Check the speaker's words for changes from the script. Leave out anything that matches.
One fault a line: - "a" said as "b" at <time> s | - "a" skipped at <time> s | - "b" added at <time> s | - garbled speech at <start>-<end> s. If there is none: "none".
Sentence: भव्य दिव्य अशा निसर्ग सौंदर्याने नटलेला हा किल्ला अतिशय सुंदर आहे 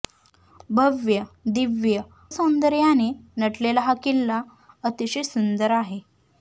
- "अशा निसर्ग" skipped at 2.0 s